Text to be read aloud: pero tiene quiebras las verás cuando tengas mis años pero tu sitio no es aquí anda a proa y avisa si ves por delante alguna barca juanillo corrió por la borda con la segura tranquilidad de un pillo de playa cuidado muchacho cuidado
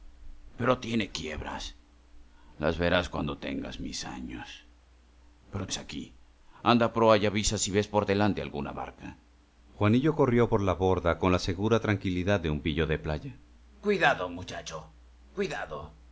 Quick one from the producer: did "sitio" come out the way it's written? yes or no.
no